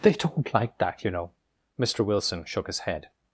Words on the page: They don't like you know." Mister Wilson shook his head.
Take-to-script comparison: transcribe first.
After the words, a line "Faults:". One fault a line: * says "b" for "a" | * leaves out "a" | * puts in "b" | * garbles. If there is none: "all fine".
They don't like that, you know." Mister Wilson shook his head.
Faults:
* puts in "that"